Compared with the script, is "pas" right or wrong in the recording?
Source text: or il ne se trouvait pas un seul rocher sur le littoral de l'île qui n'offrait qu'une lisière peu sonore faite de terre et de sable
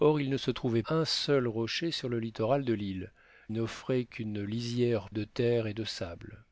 wrong